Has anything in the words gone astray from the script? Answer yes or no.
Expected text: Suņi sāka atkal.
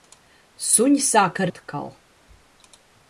no